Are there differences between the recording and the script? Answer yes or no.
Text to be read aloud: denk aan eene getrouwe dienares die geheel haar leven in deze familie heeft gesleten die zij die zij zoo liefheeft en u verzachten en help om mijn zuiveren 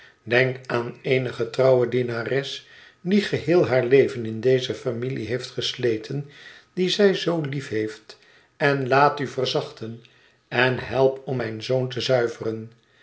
yes